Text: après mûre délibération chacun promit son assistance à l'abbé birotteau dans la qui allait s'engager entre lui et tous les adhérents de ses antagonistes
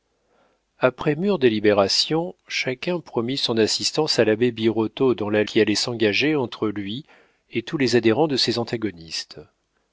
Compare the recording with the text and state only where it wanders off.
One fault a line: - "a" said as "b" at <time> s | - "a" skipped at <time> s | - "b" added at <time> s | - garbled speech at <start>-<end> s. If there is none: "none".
none